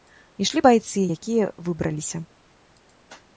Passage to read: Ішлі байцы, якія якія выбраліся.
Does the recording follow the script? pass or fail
fail